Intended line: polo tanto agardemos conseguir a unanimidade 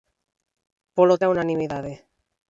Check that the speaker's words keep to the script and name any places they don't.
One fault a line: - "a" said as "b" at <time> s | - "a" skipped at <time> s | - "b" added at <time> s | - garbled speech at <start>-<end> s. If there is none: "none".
- "tanto agardemos conseguir" skipped at 1.2 s